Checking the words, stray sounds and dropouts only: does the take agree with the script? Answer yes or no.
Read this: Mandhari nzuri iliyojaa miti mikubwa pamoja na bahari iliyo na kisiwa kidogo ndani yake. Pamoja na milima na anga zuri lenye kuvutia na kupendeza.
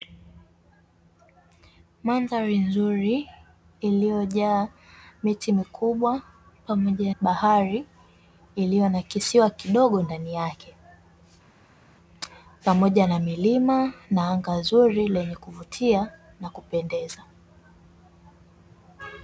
no